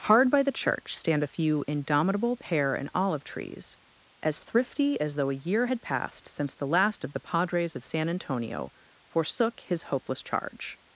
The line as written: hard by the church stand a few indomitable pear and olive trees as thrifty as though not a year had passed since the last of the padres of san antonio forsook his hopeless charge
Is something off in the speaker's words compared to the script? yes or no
yes